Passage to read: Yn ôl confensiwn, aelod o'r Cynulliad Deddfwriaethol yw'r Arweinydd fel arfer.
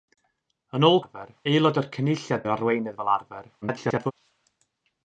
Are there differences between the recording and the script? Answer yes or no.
yes